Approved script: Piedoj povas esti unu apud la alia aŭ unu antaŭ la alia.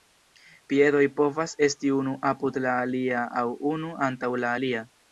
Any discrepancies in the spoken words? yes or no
no